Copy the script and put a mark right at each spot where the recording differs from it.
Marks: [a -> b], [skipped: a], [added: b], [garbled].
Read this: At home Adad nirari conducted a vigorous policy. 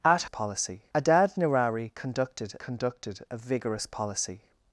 At [home -> policy] Adad nirari conducted [added: conducted] a vigorous policy.